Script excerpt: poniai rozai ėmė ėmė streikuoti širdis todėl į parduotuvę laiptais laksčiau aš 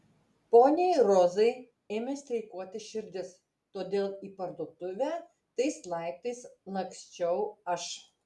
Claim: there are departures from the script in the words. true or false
true